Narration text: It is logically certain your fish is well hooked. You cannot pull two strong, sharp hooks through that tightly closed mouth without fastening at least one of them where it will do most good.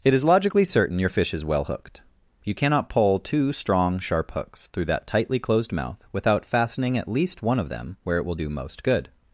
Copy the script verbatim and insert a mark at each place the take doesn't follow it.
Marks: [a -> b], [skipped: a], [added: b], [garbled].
It is logically certain your fish is well hooked. You cannot pull two strong, sharp hooks through that tightly closed mouth without fastening at least one of them where it will do most good.